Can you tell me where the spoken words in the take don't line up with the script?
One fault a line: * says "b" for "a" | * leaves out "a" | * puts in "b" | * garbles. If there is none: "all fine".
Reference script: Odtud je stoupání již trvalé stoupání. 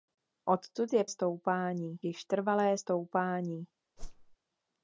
all fine